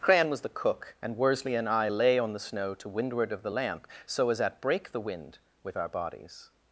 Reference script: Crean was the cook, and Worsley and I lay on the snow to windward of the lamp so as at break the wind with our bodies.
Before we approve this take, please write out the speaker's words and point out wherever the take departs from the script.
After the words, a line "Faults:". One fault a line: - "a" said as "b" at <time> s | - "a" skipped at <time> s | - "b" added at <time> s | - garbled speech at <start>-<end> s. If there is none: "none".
Crean was the cook, and Worsley and I lay on the snow to windward of the lamp so as at break the wind with our bodies.
Faults:
none